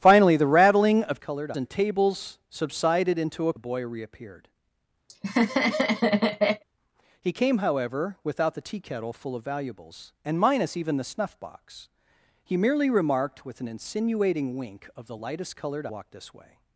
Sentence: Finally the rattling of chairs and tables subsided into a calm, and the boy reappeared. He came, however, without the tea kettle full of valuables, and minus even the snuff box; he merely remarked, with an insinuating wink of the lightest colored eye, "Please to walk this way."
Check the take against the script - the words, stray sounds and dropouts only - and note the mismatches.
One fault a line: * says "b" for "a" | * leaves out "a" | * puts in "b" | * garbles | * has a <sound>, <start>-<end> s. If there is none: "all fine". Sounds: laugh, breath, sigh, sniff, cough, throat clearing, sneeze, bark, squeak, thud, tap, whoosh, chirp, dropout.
* says "colored" for "chairs"
* leaves out "calm and"
* has a laugh, 5.1-6.6 s
* leaves out "eye Please to"